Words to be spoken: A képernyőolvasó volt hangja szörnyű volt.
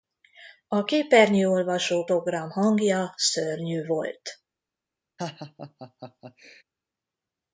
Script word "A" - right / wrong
right